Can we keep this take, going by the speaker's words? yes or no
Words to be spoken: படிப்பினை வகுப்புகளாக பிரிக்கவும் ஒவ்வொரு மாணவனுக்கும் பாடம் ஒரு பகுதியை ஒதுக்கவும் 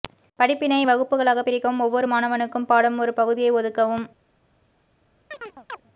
yes